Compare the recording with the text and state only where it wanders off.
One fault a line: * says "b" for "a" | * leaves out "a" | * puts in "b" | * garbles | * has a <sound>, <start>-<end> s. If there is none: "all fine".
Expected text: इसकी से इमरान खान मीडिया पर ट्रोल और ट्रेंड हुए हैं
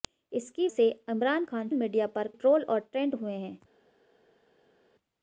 all fine